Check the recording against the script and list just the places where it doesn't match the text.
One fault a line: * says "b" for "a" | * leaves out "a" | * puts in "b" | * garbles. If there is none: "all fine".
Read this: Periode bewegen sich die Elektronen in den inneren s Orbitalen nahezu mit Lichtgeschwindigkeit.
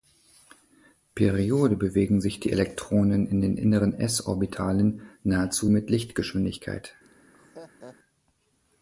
all fine